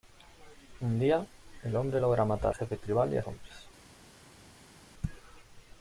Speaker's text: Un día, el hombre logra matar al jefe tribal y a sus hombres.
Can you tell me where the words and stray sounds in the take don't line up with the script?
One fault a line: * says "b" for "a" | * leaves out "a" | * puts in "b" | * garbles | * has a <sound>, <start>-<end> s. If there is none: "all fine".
* leaves out "al"
* leaves out "sus"